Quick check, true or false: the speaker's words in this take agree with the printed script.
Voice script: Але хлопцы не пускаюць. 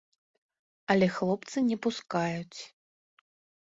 true